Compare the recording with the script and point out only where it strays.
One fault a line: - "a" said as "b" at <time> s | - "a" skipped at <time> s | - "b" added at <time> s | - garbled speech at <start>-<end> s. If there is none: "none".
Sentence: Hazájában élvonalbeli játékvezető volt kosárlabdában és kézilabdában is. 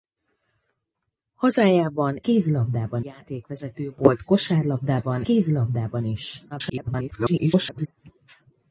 - "élvonalbeli" said as "kézilabdában" at 2.2 s
- "és" skipped at 5.2 s
- garbled speech at 6.5-7.9 s